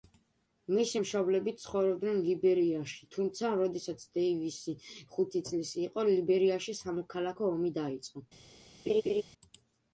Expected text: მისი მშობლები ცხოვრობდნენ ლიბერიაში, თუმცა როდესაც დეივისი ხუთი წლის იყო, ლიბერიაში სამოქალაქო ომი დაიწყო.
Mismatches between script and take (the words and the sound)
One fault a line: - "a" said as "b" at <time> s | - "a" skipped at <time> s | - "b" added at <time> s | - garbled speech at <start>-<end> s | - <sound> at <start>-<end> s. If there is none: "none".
- laugh at 8.9-9.2 s